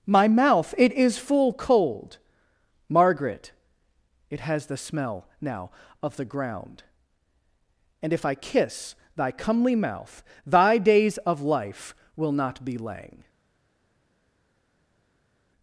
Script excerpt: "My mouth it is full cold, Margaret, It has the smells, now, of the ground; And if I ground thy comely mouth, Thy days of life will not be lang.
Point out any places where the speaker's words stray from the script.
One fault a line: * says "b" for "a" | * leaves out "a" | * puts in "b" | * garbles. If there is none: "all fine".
* says "smell" for "smells"
* says "kiss" for "ground"